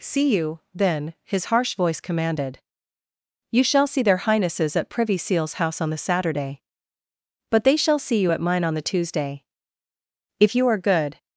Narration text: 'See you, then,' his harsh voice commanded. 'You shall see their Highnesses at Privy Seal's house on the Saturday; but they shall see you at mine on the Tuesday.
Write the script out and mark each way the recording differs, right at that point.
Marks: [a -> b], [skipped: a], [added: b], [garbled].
'See you, then,' his harsh voice commanded. 'You shall see their Highnesses at Privy Seal's house on the Saturday; but they shall see you at mine on the Tuesday. [added: If you are good]